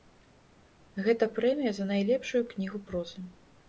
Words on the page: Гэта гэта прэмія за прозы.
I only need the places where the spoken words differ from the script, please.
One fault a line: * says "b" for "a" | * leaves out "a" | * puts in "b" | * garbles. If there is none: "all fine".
* leaves out "гэта"
* puts in "найлепшую кнігу"